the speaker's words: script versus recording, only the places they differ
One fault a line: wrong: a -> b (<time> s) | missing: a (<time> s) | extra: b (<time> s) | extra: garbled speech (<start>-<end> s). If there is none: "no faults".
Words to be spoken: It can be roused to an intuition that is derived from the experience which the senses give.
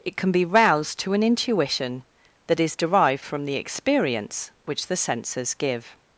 no faults